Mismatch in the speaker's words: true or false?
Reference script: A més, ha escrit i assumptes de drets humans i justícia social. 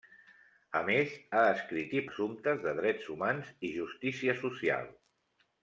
false